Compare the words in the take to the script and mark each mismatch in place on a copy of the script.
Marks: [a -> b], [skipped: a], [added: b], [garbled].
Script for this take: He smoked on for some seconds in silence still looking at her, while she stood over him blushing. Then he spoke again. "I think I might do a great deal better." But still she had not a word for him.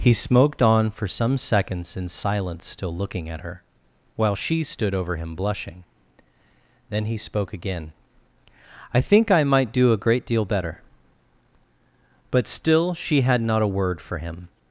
He smoked on for some seconds in silence still looking at her, while she stood over him blushing. Then he spoke again. "I think I might do a great deal better." But still she had not a word for him.